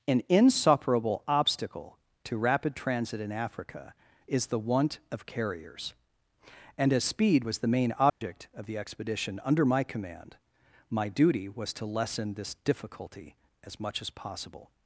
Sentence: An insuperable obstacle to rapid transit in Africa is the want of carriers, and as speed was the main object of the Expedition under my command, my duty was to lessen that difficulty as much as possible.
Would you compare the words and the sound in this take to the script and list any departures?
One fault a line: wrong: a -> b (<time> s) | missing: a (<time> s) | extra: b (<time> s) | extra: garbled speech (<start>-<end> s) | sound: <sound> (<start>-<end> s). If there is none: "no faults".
sound: dropout (8.1-8.2 s)
wrong: that -> this (12.3 s)